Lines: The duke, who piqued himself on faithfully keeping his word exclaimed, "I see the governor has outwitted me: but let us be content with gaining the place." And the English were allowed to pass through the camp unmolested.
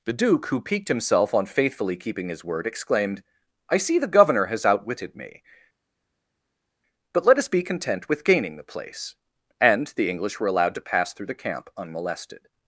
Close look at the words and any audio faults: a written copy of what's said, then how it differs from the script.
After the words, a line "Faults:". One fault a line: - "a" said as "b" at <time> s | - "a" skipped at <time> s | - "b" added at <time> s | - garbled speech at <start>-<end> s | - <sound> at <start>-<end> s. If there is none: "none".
The duke, who piqued himself on faithfully keeping his word exclaimed, "I see the governor has outwitted me: but let us be content with gaining the place." And the English were allowed to pass through the camp unmolested.
Faults:
none